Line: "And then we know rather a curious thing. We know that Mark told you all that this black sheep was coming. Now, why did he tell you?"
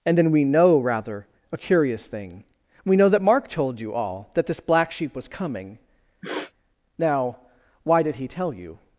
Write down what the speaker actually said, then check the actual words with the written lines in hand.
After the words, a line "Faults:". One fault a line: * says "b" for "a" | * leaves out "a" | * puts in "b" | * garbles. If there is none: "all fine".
"And then we know rather a curious thing. We know that Mark told you all that this black sheep was coming. Now, why did he tell you?"
Faults:
all fine